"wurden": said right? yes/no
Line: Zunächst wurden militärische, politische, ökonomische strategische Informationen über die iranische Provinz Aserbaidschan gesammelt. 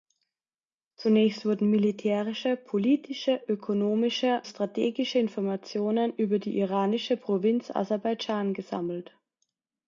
yes